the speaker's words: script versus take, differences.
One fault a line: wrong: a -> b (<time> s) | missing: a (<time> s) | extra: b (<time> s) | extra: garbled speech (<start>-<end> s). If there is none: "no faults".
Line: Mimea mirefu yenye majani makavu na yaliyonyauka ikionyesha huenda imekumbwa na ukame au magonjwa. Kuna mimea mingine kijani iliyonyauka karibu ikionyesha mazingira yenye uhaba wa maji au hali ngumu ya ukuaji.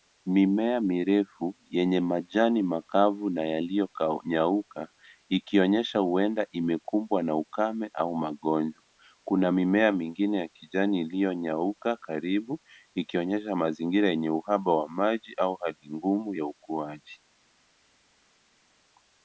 extra: ya (10.4 s)